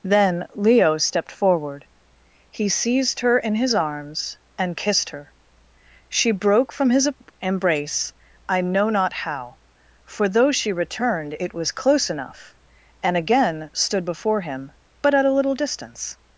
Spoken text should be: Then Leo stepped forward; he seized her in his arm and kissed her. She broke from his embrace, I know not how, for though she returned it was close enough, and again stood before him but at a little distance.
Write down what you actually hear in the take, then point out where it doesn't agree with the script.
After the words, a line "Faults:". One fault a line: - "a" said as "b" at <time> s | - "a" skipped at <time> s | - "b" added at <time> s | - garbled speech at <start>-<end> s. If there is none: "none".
Then Leo stepped forward; he seized her in his arms and kissed her. She broke from his embrace, I know not how, for though she returned it was close enough, and again stood before him but at a little distance.
Faults:
- "arm" said as "arms" at 3.8 s